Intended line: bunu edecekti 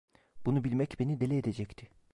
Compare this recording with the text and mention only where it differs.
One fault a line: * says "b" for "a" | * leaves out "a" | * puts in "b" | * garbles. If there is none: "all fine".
* puts in "bilmek beni deli"